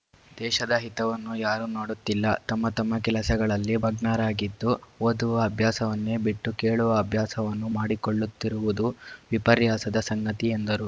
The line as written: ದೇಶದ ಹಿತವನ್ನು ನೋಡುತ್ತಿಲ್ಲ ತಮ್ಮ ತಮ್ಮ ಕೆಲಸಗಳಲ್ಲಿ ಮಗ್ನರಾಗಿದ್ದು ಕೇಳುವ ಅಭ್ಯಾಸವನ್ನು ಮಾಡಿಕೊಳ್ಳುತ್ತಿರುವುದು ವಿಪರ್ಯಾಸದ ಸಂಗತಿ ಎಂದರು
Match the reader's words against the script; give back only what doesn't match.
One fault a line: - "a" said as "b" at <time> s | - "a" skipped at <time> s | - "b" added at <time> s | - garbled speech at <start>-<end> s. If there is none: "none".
- "ಯಾರೂ" added at 1.4 s
- "ಓದುವ ಅಭ್ಯಾಸವನ್ನೇ ಬಿಟ್ಟು" added at 5.0 s